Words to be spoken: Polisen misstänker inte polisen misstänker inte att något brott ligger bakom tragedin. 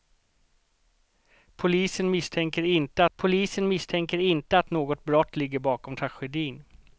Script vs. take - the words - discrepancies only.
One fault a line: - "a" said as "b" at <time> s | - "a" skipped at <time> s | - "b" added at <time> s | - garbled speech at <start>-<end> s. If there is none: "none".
none